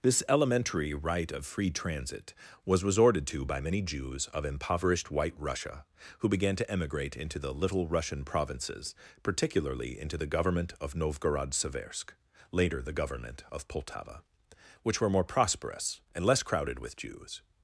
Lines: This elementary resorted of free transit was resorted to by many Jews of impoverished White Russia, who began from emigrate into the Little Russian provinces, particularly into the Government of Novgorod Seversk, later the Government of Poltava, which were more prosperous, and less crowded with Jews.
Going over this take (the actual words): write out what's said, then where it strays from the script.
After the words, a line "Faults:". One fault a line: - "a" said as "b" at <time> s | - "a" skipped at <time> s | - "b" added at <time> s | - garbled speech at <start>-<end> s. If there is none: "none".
This elementary right of free transit was resorted to by many Jews of impoverished White Russia, who began to emigrate into the Little Russian provinces, particularly into the Government of Novgorod Seversk, later the Government of Poltava, which were more prosperous, and less crowded with Jews.
Faults:
- "resorted" said as "right" at 0.9 s
- "from" said as "to" at 6.5 s